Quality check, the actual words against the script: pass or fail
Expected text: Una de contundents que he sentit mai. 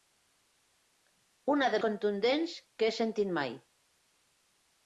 pass